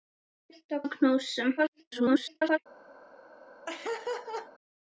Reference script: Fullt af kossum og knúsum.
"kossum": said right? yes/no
no